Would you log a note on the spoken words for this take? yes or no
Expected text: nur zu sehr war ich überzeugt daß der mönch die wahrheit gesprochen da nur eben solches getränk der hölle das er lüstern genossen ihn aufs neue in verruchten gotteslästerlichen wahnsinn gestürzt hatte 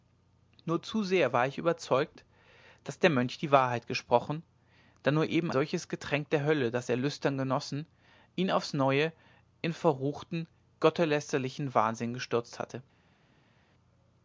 no